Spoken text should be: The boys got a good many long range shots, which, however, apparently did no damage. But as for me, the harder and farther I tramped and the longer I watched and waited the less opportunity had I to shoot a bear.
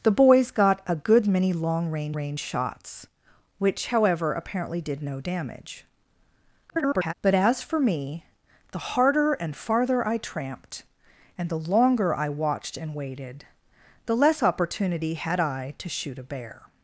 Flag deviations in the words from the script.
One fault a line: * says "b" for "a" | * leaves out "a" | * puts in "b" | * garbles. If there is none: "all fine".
* puts in "range"
* garbles